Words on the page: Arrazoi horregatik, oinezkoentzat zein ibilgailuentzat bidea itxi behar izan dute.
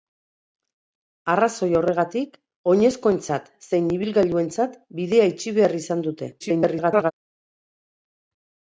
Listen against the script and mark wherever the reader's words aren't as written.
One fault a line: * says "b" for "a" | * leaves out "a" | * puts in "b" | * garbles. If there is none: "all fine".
* garbles